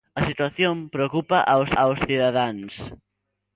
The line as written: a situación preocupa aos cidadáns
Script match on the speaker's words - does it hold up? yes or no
no